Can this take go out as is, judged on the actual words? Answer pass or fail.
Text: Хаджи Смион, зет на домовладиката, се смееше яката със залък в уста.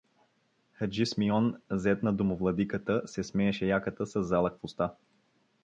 pass